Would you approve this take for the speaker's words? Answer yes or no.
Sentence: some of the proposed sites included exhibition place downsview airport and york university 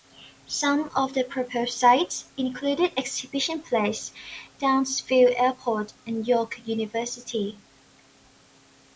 yes